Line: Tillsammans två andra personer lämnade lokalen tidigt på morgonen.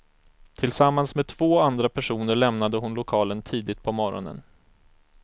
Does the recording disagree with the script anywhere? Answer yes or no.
yes